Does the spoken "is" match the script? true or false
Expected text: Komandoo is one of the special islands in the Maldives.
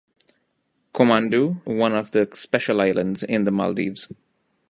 false